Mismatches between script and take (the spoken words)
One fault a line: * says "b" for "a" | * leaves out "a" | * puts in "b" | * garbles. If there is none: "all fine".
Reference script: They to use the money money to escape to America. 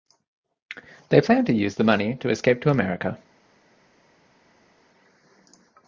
* puts in "plan"
* leaves out "money"